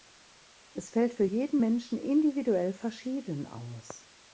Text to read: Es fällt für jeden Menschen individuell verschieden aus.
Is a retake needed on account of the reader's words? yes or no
no